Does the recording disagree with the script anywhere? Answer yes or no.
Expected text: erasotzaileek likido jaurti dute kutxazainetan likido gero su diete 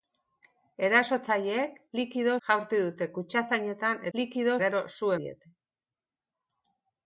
no